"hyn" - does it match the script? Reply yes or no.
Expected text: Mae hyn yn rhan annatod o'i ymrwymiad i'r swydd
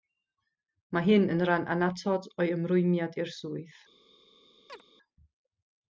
yes